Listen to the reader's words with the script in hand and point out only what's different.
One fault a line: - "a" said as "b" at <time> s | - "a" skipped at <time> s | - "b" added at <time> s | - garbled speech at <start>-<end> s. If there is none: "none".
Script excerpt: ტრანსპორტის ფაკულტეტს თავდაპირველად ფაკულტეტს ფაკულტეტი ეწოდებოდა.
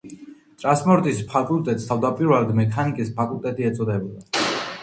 - "ფაკულტეტს" said as "მექანიკის" at 2.6 s